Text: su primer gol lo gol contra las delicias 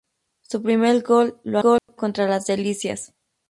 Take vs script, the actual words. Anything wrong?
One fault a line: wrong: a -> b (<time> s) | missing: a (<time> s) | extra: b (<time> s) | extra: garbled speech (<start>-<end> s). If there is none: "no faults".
no faults